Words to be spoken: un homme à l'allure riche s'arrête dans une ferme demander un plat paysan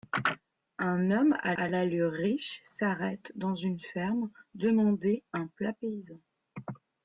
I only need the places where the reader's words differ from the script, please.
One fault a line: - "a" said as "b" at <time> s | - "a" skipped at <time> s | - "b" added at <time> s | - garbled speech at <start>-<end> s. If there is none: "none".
- "à" added at 1.6 s